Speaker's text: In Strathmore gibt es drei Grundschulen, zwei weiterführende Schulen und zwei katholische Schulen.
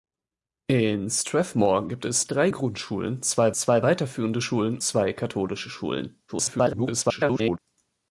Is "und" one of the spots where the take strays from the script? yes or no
yes